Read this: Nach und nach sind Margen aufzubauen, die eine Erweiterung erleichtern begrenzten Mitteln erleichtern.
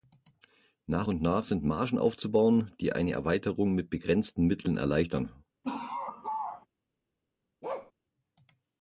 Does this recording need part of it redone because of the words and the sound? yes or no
yes